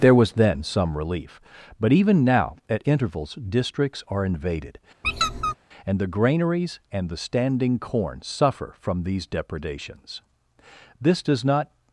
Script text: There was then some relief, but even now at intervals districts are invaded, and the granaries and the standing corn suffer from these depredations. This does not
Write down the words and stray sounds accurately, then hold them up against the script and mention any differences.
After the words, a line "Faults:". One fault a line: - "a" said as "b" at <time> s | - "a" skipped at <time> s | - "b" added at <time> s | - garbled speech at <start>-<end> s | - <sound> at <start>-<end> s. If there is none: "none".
There was then some relief, but even now at intervals districts are invaded, and the granaries and the standing corn suffer from these depredations. This does not
Faults:
- squeak at 5.0-5.5 s